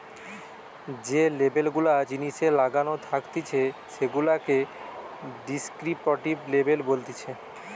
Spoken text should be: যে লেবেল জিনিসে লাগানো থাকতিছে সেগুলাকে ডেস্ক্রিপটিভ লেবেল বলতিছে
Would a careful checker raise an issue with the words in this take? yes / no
yes